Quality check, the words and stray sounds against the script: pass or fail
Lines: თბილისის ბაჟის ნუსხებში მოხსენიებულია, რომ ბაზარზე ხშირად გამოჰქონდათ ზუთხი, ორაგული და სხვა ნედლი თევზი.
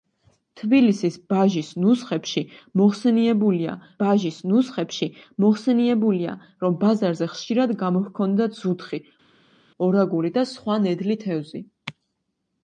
fail